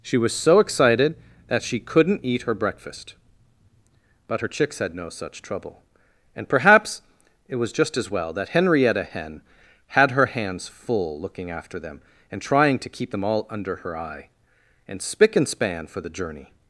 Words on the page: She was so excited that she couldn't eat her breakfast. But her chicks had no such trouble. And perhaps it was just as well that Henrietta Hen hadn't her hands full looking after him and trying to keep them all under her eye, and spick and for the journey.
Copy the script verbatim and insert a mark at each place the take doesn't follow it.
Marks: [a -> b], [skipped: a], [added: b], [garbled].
She was so excited that she couldn't eat her breakfast. But her chicks had no such trouble. And perhaps it was just as well that Henrietta Hen [hadn't -> had] her hands full looking after [him -> them] and trying to keep them all under her eye, and spick and [added: span] for the journey.